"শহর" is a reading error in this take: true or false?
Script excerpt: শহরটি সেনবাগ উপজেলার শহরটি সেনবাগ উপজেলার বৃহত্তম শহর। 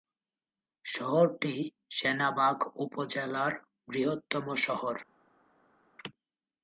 false